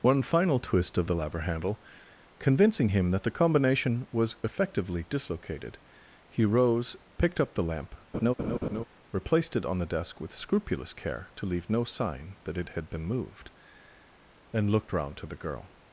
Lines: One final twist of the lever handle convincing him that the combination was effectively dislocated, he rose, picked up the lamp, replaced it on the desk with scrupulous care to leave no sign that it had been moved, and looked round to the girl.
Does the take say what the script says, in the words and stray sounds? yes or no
no